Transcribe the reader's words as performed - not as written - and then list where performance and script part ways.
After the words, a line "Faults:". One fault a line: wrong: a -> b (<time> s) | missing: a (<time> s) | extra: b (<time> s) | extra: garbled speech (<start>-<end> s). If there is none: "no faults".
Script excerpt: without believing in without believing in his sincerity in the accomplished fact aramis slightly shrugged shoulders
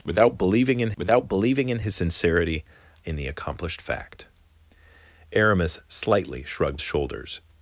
without believing in without believing in his sincerity in the accomplished fact aramis slightly shrugged shoulders
Faults:
no faults